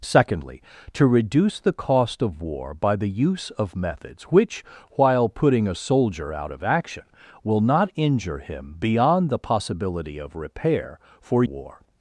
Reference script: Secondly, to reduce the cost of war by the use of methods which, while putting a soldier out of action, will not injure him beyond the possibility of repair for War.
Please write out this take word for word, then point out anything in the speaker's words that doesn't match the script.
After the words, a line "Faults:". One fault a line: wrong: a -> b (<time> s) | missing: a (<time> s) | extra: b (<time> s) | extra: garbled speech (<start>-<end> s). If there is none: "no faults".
Secondly, to reduce the cost of war by the use of methods which, while putting a soldier out of action, will not injure him beyond the possibility of repair for War.
Faults:
no faults